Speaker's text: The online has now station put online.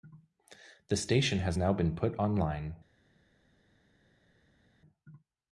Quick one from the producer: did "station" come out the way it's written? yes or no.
no